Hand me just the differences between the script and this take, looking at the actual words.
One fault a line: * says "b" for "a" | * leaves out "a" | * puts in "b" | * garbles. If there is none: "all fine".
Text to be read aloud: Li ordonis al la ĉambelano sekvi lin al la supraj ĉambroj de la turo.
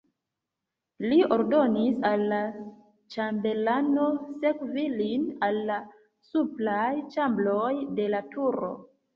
all fine